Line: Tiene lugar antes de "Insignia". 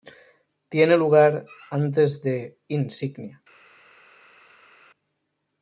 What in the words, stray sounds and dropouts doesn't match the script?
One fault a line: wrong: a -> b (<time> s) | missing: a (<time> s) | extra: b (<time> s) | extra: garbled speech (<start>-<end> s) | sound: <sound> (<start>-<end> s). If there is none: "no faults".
no faults